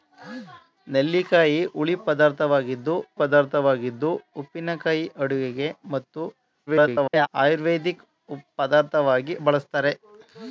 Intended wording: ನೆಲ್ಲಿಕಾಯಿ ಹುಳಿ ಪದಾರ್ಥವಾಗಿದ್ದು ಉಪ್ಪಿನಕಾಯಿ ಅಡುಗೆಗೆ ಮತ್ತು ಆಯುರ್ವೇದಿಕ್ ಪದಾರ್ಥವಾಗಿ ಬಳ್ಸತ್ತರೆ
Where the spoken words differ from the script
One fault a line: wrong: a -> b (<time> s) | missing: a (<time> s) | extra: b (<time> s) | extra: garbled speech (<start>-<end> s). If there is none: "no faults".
extra: ಪದಾರ್ಥವಾಗಿದ್ದು (3.2 s)
extra: garbled speech (6.7-7.3 s)